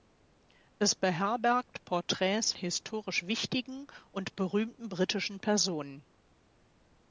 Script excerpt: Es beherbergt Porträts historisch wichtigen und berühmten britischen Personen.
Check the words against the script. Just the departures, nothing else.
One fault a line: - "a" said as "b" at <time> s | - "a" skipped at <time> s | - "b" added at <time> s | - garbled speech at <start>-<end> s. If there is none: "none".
none